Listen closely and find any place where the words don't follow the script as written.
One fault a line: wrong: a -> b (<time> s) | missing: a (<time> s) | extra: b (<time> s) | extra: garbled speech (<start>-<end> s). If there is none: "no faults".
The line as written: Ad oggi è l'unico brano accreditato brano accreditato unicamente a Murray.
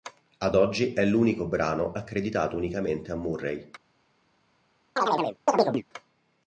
missing: brano accreditato (2.6 s)